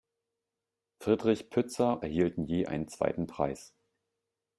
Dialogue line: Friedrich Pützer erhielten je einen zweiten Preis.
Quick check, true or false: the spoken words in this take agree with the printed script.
true